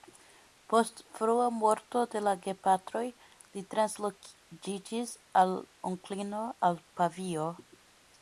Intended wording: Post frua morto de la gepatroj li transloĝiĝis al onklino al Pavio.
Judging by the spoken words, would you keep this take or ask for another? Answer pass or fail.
pass